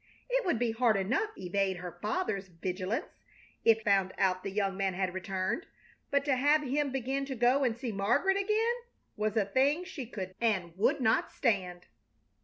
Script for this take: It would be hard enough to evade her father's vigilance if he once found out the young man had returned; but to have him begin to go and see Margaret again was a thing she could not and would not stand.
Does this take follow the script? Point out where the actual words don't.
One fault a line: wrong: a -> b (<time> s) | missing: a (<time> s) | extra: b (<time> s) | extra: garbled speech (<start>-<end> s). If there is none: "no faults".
missing: to (1.4 s)
missing: he once (3.8 s)
missing: not (10.4 s)